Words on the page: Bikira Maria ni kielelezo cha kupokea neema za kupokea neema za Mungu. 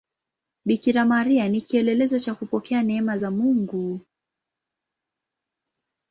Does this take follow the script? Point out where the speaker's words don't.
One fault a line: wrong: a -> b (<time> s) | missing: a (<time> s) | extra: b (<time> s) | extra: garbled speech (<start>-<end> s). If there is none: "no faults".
missing: kupokea neema za (3.3 s)